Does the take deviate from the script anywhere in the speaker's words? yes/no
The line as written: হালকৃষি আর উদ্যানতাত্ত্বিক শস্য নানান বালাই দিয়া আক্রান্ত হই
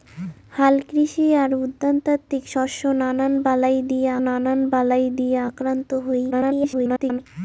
yes